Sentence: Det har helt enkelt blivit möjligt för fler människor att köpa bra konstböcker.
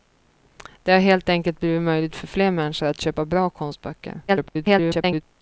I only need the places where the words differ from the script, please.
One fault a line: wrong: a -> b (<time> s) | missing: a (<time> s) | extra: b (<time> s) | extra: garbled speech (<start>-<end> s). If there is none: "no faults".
extra: garbled speech (4.3-5.2 s)